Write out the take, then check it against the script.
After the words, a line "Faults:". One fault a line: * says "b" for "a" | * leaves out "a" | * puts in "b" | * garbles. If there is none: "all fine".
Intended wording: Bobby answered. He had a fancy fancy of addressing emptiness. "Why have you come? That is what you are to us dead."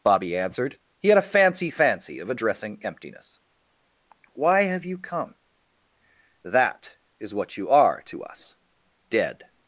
Bobby answered. He had a fancy fancy of addressing emptiness. "Why have you come? That is what you are to us dead."
Faults:
all fine